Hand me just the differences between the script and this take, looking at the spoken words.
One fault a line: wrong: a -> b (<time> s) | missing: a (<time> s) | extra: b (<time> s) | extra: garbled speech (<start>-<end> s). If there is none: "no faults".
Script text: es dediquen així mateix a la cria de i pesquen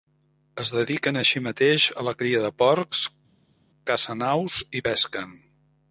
extra: porcs cacen aus (2.6 s)